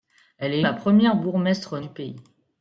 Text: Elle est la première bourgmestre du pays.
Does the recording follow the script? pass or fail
pass